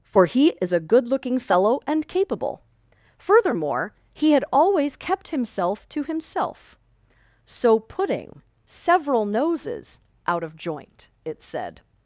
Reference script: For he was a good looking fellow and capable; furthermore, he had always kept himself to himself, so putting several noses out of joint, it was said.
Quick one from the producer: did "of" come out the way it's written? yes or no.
yes